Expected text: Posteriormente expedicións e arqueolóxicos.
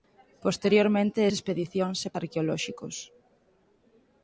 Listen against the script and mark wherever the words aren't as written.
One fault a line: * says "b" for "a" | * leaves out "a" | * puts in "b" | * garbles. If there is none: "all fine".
all fine